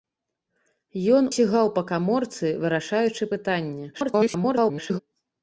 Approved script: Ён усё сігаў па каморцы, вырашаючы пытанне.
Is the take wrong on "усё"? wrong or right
wrong